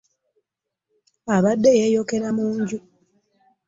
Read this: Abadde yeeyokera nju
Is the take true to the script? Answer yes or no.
no